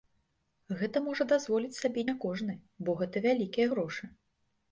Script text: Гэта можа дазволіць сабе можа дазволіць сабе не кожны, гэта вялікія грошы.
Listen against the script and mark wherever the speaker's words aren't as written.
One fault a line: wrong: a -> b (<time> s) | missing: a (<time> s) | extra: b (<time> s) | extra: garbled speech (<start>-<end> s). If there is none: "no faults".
missing: можа дазволіць сабе (2.0 s)
extra: бо (2.8 s)